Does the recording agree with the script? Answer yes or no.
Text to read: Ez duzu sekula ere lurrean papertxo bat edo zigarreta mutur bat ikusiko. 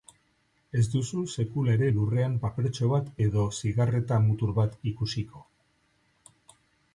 yes